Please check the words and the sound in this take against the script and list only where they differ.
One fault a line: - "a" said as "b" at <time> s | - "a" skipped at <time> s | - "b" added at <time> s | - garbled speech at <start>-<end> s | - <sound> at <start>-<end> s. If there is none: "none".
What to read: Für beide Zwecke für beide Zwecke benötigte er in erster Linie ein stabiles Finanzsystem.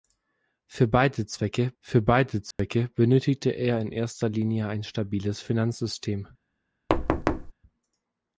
- dropout at 2.5-2.6 s
- thud at 6.9-7.5 s